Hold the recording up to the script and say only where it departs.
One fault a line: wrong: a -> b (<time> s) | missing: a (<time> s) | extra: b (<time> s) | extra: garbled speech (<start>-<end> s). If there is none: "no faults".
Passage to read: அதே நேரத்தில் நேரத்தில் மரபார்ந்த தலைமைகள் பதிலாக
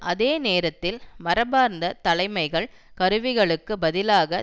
missing: நேரத்தில் (1.0 s)
extra: கருவிகளுக்கு (3.0 s)